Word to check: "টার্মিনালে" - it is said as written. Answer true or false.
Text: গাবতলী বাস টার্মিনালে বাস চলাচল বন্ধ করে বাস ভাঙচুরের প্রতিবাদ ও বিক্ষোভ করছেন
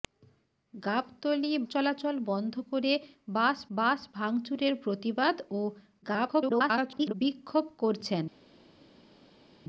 false